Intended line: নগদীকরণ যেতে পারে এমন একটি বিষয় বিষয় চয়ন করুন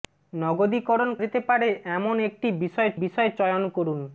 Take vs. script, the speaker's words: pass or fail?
pass